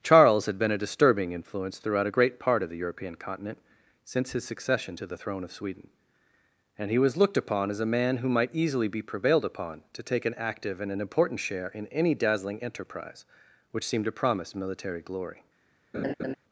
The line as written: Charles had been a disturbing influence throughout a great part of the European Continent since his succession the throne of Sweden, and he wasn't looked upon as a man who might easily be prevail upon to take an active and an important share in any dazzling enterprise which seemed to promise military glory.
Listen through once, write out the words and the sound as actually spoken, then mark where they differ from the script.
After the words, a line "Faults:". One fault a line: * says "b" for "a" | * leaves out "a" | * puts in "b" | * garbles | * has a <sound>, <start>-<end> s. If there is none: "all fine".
Charles had been a disturbing influence throughout a great part of the European Continent since his succession to the throne of Sweden, and he was looked upon as a man who might easily be prevailed upon to take an active and an important share in any dazzling enterprise which seemed to promise military glory.
Faults:
* puts in "to"
* says "was" for "wasn't"
* says "prevailed" for "prevail"
* has a laugh, 15.9-16.3 s